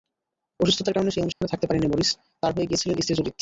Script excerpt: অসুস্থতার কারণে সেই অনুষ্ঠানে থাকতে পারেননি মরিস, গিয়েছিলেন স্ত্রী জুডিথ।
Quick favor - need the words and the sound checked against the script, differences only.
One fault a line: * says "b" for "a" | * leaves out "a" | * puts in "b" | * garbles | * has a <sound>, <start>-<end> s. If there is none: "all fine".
* has a dropout, 1.3-1.4 s
* puts in "তাঁর হয়ে"